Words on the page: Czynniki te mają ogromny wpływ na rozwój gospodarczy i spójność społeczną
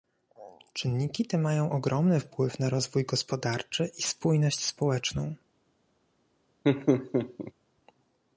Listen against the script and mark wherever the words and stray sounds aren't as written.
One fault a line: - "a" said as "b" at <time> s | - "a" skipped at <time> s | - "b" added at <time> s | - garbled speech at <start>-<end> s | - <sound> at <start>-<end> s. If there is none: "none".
- laugh at 6.6-7.5 s